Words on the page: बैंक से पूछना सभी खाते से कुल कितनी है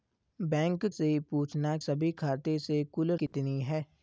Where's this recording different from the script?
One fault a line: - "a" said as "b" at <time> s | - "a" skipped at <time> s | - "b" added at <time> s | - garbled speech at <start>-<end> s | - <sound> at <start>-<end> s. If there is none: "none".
- dropout at 3.3-3.3 s